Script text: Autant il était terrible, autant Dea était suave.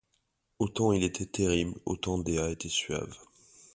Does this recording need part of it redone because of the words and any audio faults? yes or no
no